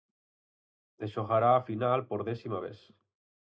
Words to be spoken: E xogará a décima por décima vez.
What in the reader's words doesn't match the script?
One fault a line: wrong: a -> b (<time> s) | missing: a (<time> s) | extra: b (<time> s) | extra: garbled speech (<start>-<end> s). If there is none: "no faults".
wrong: décima -> final (1.7 s)